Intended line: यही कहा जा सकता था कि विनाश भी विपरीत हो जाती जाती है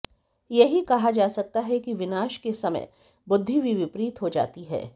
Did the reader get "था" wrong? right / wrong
wrong